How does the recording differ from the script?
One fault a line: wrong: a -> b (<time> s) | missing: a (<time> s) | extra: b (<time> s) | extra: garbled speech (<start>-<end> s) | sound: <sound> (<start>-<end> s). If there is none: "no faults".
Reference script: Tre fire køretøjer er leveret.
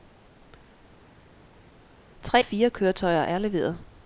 no faults